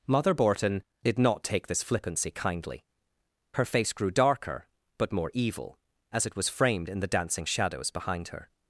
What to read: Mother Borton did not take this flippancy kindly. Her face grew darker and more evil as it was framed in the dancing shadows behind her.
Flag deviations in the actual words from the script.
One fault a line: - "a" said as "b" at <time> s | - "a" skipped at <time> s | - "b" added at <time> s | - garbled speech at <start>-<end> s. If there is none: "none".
- "and" said as "but" at 5.0 s